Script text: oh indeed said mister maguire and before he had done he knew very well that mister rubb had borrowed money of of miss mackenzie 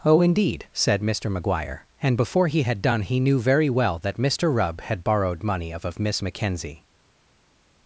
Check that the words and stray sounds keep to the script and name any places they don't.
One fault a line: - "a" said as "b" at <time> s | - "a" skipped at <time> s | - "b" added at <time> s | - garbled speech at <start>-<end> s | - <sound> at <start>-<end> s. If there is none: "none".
none